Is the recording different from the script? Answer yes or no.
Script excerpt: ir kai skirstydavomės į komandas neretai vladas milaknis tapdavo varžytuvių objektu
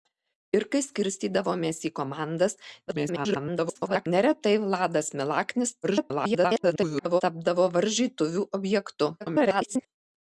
yes